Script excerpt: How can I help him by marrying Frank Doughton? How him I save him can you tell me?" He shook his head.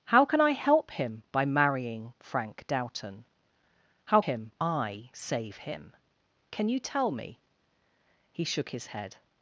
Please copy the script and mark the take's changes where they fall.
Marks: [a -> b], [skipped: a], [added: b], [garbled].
How can I help him by marrying Frank Doughton? How him I save him can you tell me?" He shook his head.